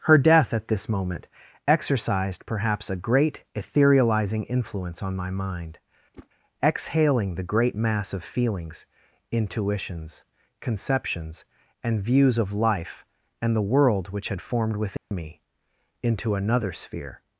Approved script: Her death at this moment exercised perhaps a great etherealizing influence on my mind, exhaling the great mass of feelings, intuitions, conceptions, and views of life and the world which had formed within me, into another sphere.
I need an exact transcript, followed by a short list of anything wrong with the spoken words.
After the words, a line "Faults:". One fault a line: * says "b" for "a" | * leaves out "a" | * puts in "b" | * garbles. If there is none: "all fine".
Her death at this moment exercised perhaps a great etherealizing influence on my mind, exhaling the great mass of feelings, intuitions, conceptions, and views of life and the world which had formed within me, into another sphere.
Faults:
all fine